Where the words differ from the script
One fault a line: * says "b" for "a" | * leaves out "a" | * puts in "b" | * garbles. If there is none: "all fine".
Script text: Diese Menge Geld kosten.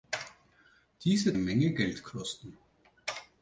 all fine